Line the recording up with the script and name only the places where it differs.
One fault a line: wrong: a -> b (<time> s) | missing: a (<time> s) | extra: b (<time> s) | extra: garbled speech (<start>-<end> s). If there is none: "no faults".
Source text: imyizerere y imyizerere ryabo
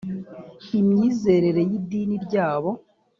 wrong: imyizerere -> idini (1.8 s)